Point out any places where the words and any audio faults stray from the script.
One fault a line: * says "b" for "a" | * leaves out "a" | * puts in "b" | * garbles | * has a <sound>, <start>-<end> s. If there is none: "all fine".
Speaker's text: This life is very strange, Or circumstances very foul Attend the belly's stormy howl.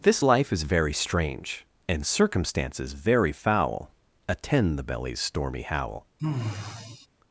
* says "And" for "Or"
* has a sigh, 6.2-7.1 s